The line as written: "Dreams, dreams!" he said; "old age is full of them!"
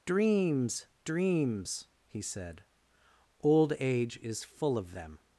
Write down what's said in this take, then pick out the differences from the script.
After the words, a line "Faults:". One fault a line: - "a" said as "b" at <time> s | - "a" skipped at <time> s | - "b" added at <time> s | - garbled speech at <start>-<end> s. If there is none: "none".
"Dreams, dreams!" he said; "old age is full of them!"
Faults:
none